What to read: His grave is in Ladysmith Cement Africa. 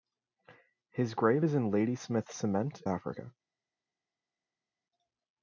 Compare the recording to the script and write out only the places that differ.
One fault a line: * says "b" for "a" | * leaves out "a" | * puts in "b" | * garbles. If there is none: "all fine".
all fine